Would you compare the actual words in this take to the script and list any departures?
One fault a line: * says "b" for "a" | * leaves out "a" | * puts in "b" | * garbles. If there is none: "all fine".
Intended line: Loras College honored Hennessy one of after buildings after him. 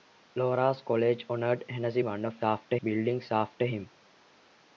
all fine